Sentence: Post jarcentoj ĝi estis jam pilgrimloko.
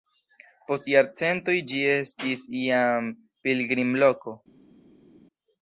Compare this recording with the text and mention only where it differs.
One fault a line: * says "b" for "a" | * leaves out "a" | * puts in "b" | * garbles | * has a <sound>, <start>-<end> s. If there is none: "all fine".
all fine